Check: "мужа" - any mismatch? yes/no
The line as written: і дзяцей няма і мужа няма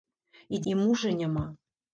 no